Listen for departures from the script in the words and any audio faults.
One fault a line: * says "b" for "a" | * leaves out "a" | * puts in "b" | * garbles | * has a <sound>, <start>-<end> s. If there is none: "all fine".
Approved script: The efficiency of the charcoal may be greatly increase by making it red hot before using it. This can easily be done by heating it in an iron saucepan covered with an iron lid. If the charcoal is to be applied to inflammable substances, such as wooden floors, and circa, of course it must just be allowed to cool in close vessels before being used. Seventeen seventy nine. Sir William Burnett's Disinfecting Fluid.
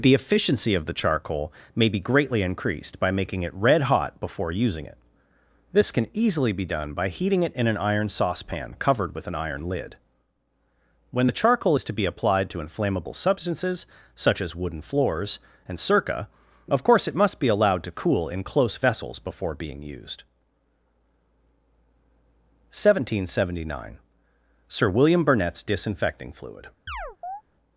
* says "increased" for "increase"
* says "When" for "If"
* leaves out "just"
* has a chirp, 26.9-27.4 s